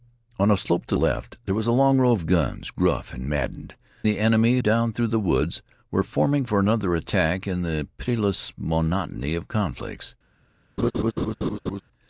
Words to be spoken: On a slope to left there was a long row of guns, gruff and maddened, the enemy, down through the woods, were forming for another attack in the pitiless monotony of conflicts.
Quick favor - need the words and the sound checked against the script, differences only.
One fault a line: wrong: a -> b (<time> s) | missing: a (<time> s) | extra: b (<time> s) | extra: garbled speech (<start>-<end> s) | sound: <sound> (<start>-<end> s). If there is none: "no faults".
sound: laugh (10.8-11.8 s)